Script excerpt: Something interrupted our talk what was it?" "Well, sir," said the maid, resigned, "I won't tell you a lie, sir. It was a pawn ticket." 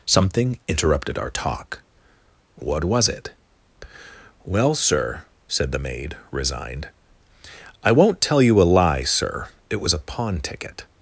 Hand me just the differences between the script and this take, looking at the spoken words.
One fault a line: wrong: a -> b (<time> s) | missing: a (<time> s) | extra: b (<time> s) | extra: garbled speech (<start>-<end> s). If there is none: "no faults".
no faults